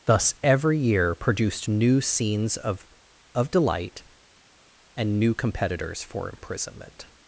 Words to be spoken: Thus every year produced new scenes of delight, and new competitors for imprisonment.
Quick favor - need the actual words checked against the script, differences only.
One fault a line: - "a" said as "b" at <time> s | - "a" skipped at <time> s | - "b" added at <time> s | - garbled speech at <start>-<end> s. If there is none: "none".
- "of" added at 3.3 s